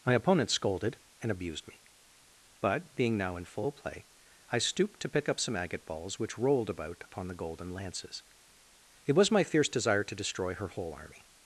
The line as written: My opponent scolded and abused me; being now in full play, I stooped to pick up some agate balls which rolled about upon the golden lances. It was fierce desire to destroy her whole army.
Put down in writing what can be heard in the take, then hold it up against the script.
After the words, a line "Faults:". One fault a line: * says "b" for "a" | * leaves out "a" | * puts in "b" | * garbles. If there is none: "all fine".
My opponent scolded and abused me; but, being now in full play, I stooped to pick up some agate balls which rolled about upon the golden lances. It was my fierce desire to destroy her whole army.
Faults:
* puts in "but"
* puts in "my"